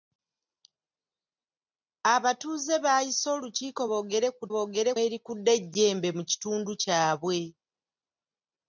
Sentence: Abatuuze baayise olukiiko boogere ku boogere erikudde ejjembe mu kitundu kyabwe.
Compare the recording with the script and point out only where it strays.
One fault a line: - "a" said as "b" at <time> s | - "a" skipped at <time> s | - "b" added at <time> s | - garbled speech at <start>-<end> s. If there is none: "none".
none